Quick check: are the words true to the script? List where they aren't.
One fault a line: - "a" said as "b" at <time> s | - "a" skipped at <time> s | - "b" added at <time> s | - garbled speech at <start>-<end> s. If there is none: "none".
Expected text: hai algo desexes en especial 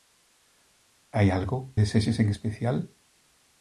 none